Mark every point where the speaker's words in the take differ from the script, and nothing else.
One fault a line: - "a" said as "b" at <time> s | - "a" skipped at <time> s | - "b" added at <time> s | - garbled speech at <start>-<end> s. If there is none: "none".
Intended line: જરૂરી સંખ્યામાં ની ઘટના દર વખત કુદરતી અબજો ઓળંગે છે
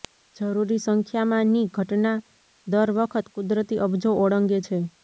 none